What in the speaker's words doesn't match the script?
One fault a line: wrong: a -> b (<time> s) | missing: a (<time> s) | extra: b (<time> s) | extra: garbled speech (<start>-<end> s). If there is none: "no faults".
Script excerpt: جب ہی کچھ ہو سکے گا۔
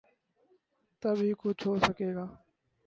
wrong: جب -> تب (1.0 s)